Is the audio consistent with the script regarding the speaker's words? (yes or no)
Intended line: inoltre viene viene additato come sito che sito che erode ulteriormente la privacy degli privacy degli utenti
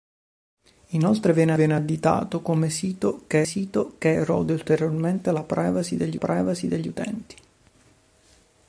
yes